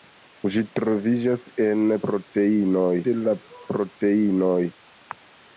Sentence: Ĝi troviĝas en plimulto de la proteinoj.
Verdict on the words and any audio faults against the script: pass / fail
fail